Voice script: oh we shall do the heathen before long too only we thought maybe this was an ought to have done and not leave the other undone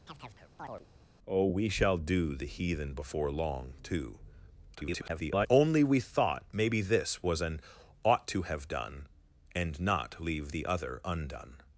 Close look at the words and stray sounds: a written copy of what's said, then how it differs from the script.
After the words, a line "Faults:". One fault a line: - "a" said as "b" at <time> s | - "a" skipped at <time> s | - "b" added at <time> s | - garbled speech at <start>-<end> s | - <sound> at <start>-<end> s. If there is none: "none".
oh we shall do the heathen before long too [garbled] only we thought maybe this was an ought to have done and not leave the other undone
Faults:
- chirp at 0.1-0.9 s
- garbled speech at 4.7-5.5 s